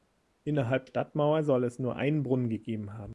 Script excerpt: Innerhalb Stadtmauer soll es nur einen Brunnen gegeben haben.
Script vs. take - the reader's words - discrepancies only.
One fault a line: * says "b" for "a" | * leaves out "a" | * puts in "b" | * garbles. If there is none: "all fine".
all fine